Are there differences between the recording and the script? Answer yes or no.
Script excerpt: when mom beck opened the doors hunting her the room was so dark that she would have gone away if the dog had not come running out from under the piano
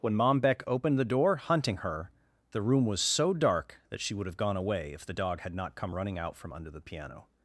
yes